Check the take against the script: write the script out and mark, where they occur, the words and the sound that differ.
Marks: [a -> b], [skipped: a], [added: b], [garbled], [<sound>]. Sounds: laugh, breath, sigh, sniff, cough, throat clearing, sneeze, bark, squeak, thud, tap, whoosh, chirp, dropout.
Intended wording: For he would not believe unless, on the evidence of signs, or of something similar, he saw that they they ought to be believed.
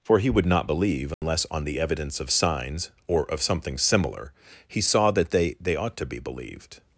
For he would not believe unless, [dropout] on the evidence of signs, or of something similar, he saw that they they ought to be believed.